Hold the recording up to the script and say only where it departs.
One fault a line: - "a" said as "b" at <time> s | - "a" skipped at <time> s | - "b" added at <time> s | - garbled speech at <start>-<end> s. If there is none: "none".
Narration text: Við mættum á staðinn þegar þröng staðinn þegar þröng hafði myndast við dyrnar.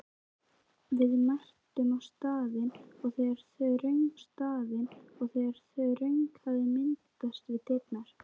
none